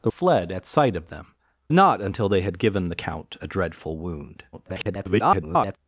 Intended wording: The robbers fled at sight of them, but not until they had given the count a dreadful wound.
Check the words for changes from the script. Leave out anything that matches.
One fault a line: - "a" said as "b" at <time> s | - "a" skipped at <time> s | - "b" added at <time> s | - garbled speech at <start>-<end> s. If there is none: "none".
- "robbers" skipped at 0.1 s
- "but" skipped at 1.3 s
- garbled speech at 4.5-5.8 s